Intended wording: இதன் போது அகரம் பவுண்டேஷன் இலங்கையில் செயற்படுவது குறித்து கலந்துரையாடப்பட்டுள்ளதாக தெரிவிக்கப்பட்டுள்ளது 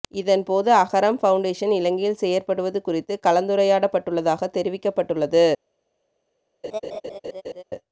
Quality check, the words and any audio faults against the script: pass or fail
fail